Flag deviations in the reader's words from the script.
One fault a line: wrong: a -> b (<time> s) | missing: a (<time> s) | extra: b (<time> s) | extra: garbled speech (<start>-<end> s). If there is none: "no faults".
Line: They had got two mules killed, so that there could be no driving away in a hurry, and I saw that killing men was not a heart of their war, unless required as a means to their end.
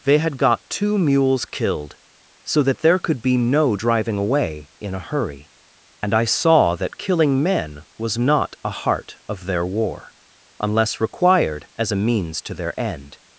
no faults